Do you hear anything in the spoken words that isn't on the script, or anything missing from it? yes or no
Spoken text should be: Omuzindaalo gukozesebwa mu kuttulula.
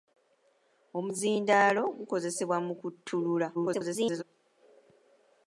yes